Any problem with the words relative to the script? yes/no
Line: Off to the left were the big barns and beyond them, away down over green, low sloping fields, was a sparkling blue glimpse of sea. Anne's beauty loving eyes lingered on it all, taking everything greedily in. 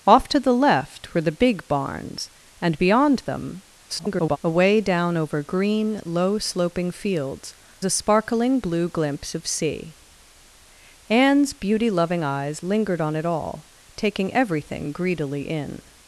yes